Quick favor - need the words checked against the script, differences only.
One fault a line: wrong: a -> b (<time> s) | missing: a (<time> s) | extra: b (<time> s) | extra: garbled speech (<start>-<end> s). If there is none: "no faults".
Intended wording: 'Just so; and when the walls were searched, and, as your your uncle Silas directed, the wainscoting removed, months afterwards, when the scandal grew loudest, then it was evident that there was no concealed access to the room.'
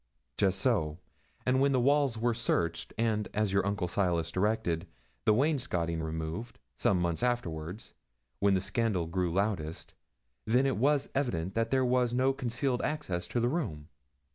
missing: your (3.7 s)
extra: some (6.8 s)